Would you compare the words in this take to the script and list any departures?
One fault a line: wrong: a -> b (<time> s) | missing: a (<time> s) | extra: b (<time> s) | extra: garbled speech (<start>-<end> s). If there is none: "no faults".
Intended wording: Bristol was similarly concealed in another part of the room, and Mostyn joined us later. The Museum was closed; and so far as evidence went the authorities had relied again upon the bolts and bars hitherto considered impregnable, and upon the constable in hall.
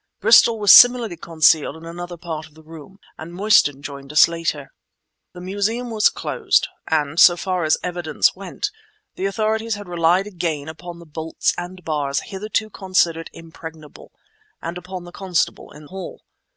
no faults